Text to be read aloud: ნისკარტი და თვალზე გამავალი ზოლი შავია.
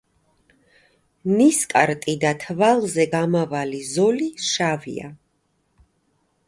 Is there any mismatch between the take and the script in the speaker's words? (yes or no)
no